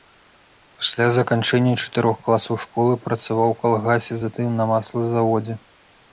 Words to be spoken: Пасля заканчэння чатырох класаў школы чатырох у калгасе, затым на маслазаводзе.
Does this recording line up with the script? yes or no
no